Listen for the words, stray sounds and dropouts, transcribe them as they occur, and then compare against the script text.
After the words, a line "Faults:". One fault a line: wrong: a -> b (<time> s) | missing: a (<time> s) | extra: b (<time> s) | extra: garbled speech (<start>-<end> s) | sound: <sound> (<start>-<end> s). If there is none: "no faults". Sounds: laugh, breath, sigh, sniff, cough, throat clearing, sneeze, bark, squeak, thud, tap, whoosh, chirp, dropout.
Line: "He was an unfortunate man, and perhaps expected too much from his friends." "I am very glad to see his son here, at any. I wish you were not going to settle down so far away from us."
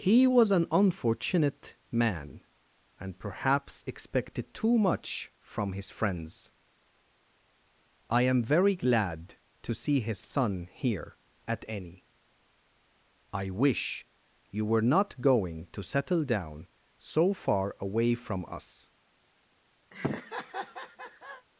"He was an unfortunate man, and perhaps expected too much from his friends." "I am very glad to see his son here, at any. I wish you were not going to settle down so far away from us."
Faults:
sound: laugh (19.9-21.5 s)